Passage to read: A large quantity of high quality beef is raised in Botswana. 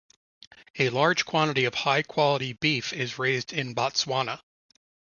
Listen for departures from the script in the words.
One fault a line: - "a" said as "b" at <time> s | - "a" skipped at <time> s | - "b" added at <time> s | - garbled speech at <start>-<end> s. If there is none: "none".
none